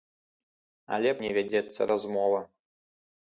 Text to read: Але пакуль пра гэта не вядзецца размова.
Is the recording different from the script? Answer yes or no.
yes